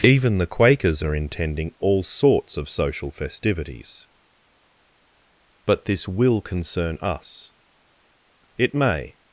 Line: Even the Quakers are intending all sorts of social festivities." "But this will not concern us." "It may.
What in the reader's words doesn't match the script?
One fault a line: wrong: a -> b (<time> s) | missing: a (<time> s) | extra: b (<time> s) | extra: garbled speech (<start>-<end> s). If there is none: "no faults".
missing: not (6.4 s)